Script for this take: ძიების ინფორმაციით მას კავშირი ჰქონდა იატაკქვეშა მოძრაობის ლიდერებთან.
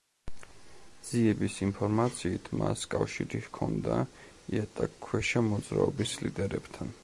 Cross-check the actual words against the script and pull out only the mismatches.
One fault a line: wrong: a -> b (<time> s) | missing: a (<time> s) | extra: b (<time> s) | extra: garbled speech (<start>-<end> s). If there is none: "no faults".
no faults